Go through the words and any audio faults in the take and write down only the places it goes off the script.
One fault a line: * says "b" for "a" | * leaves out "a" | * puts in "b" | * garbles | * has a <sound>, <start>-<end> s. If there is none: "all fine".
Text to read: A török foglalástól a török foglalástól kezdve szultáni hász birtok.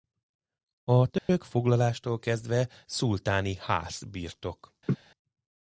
* has a dropout, 1.2-1.3 s
* leaves out "a török foglalástól"
* has a laugh, 4.9-5.0 s